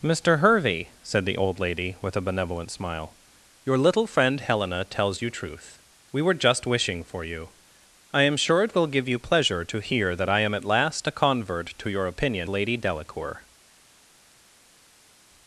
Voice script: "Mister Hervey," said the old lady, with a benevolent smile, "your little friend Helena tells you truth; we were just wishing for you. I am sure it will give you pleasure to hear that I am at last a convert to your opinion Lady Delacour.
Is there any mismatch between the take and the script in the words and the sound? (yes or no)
no